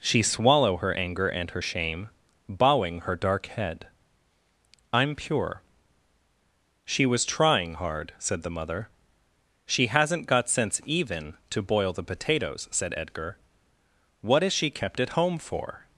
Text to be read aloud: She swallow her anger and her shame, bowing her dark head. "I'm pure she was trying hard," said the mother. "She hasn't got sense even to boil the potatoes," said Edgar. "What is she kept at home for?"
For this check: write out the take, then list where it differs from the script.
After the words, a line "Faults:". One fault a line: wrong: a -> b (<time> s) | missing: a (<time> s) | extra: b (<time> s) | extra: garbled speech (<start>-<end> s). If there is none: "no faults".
She swallow her anger and her shame, bowing her dark head. "I'm pure she was trying hard," said the mother. "She hasn't got sense even to boil the potatoes," said Edgar. "What is she kept at home for?"
Faults:
no faults